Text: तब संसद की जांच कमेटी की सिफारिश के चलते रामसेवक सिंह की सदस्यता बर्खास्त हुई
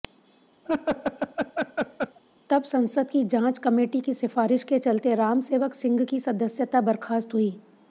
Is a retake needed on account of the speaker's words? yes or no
no